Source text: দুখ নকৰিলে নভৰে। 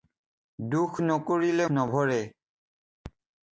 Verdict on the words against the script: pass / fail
pass